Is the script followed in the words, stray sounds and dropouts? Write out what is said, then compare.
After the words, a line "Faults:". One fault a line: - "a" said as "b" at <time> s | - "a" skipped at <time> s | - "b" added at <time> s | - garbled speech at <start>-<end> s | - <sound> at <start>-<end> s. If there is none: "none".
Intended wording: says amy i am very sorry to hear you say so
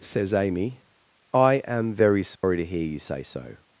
says amy i am very sorry to hear you say so
Faults:
- dropout at 2.4-2.4 s